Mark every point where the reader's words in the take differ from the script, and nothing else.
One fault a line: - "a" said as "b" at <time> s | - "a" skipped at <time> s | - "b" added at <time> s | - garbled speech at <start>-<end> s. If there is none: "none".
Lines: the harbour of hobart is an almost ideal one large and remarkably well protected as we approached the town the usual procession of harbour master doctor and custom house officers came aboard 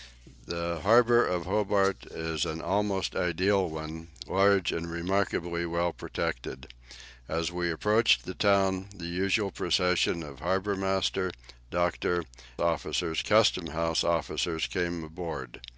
- "and" said as "officers" at 12.6 s